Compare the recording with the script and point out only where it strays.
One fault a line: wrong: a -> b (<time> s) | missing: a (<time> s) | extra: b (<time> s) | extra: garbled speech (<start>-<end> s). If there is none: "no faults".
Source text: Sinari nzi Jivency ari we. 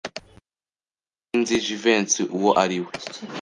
extra: uwo (2.4 s)